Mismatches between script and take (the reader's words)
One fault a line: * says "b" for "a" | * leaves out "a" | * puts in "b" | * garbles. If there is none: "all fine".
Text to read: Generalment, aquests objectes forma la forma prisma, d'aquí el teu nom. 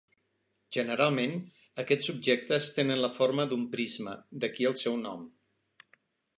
* says "tenen" for "forma"
* puts in "d'un"
* says "seu" for "teu"